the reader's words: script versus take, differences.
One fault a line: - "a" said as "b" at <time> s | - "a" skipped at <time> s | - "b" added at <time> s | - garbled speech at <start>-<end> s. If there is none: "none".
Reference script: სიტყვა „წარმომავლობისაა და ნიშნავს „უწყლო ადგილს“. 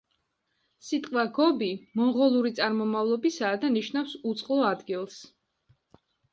- "გობი მონღოლური" added at 1.4 s